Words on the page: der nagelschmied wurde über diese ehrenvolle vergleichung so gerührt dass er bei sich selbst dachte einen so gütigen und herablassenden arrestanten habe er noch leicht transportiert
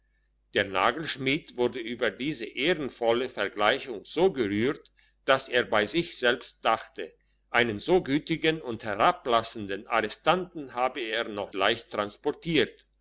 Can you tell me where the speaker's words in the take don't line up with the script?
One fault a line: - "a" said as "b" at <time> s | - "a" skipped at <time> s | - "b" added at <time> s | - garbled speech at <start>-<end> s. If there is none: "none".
none